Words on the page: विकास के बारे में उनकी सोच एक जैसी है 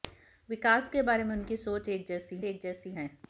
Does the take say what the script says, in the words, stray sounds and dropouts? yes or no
no